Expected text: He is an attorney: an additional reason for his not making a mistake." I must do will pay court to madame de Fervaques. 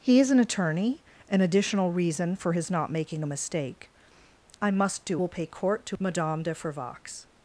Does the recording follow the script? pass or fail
pass